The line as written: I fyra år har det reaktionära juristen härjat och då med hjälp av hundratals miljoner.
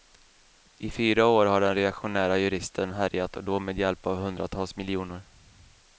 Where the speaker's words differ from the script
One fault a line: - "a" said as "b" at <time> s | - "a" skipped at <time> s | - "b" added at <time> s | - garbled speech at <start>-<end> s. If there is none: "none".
- "det" said as "den" at 1.6 s